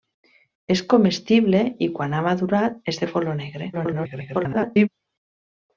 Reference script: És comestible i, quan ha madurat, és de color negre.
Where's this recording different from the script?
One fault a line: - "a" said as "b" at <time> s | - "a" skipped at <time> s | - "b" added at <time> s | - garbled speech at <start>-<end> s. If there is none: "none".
- garbled speech at 3.7-4.9 s